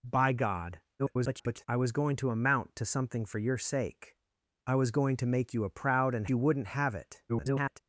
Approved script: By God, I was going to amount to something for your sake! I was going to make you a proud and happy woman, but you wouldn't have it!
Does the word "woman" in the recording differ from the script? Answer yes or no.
yes